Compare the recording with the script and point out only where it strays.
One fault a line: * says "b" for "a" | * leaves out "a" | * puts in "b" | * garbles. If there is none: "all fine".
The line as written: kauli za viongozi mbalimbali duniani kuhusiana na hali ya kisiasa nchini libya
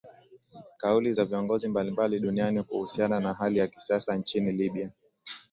all fine